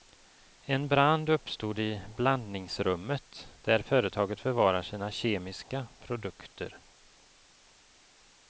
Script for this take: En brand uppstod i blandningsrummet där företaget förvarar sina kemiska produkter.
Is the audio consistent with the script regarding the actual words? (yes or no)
yes